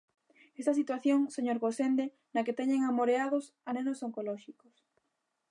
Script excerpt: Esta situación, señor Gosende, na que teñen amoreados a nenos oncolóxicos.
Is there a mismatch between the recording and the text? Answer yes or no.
no